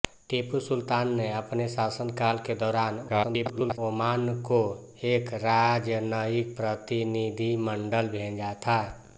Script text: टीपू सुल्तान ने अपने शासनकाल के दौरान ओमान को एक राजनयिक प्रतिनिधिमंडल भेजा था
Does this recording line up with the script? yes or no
no